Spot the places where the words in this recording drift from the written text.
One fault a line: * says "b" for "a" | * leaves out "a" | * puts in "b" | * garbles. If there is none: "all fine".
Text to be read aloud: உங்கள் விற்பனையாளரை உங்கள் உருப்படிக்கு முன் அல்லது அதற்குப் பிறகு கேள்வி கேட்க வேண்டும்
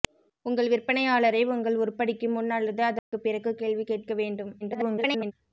* garbles